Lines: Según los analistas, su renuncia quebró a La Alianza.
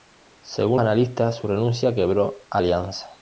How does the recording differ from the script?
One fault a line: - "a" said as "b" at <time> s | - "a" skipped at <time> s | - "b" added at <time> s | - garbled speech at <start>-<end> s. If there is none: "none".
- "los" skipped at 0.8 s
- "La" skipped at 2.6 s